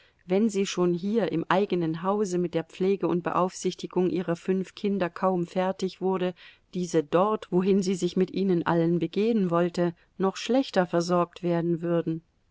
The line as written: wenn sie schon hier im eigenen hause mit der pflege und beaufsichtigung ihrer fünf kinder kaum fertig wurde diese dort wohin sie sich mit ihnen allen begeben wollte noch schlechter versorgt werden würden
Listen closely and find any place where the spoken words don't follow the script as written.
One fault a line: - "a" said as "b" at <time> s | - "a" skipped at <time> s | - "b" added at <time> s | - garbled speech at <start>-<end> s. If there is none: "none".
none